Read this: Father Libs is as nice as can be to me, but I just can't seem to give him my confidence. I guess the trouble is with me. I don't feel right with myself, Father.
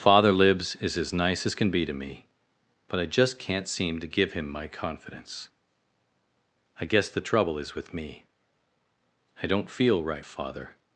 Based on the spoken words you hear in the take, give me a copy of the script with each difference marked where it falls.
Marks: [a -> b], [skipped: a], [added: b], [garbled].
Father Libs is as nice as can be to me, but I just can't seem to give him my confidence. I guess the trouble is with me. I don't feel right [skipped: with myself,] Father.